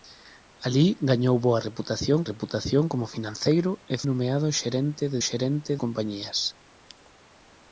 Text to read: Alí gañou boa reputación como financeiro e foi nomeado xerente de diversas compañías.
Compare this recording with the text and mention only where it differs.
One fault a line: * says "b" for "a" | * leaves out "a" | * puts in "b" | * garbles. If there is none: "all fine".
* puts in "reputación"
* leaves out "foi"
* says "xerente" for "diversas"